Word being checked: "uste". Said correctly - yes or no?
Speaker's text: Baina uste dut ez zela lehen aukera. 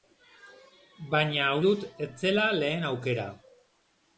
no